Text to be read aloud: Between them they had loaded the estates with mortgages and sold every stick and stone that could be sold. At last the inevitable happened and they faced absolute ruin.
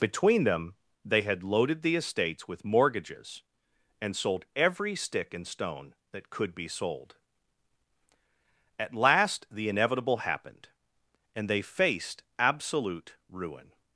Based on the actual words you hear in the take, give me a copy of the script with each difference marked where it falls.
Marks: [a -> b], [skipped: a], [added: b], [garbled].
Between them they had loaded the estates with mortgages and sold every stick and stone that could be sold. At last the inevitable happened and they faced absolute ruin.